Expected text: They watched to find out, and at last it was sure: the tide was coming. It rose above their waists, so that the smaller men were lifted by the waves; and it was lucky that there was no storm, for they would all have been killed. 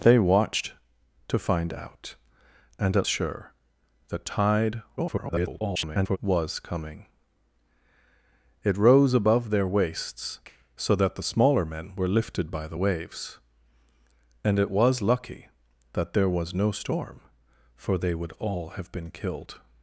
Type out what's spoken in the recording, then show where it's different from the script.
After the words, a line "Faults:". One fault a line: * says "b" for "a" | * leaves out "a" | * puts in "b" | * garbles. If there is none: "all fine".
They watched to find out, and at sure: the tide [garbled] was coming. It rose above their waists, so that the smaller men were lifted by the waves; and it was lucky that there was no storm, for they would all have been killed.
Faults:
* leaves out "last it was"
* garbles